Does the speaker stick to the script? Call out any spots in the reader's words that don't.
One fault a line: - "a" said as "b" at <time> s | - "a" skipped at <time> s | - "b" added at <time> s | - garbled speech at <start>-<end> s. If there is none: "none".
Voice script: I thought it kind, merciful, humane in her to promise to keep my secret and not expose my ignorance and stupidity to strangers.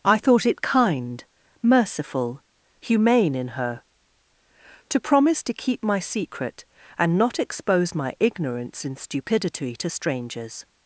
none